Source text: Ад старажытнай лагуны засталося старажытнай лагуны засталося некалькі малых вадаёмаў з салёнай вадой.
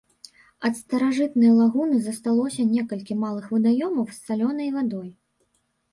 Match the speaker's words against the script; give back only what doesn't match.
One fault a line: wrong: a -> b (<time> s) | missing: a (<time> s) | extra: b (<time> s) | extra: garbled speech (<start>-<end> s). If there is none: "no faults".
missing: старажытнай лагуны засталося (2.6 s)